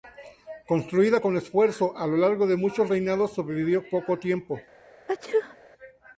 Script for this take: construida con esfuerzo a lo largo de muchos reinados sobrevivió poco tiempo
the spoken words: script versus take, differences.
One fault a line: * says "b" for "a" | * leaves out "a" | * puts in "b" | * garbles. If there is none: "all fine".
all fine